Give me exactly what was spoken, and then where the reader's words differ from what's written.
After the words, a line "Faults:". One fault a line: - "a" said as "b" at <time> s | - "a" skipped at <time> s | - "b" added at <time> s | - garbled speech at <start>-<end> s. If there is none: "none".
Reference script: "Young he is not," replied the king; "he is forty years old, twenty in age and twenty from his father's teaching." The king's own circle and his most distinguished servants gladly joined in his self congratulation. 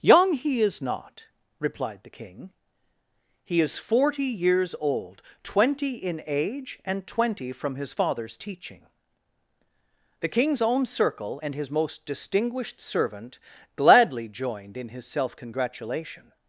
"Young he is not," replied the king; "he is forty years old, twenty in age and twenty from his father's teaching." The king's own circle and his most distinguished servant gladly joined in his self congratulation.
Faults:
- "servants" said as "servant" at 12.8 s